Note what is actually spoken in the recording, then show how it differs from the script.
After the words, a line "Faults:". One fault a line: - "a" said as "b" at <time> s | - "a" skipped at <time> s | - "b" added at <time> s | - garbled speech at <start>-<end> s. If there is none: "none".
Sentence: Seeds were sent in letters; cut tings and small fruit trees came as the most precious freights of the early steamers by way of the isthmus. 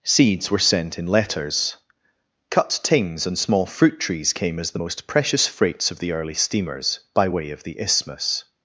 Seeds were sent in letters; cut tings and small fruit trees came as the most precious freights of the early steamers by way of the isthmus.
Faults:
none